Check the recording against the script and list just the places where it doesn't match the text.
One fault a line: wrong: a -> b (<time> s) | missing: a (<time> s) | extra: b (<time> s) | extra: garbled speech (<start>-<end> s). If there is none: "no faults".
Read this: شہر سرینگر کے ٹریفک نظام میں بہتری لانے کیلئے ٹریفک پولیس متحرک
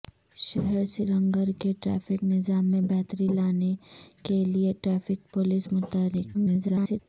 extra: garbled speech (6.3-7.0 s)